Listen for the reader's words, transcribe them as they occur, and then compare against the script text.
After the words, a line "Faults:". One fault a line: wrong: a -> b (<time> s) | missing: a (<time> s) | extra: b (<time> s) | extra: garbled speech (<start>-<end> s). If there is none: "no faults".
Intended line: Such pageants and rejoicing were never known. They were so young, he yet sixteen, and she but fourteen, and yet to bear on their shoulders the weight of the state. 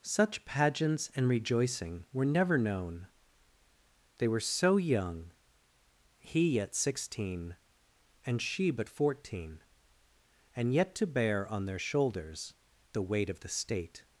Such pageants and rejoicing were never known. They were so young, he yet sixteen, and she but fourteen, and yet to bear on their shoulders the weight of the state.
Faults:
no faults